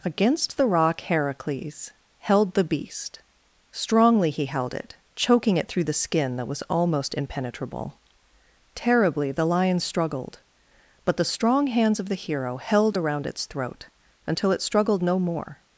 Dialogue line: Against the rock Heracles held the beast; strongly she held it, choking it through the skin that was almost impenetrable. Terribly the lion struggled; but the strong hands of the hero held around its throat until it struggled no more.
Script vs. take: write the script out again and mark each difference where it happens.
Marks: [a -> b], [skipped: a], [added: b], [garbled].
Against the rock Heracles held the beast; strongly [she -> he] held it, choking it through the skin that was almost impenetrable. Terribly the lion struggled; but the strong hands of the hero held around its throat until it struggled no more.